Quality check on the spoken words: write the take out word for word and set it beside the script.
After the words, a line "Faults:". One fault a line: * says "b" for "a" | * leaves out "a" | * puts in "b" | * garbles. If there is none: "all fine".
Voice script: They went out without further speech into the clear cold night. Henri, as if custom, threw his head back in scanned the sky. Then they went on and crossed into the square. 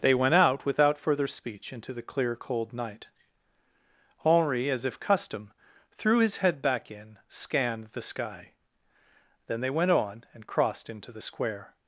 They went out without further speech into the clear cold night. Henri, as if custom, threw his head back in scanned the sky. Then they went on and crossed into the square.
Faults:
all fine